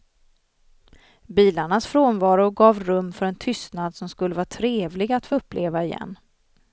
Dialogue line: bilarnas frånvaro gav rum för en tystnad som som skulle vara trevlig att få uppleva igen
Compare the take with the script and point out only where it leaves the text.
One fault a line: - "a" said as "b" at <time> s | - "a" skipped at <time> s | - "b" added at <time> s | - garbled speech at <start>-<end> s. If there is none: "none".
- "som" skipped at 4.1 s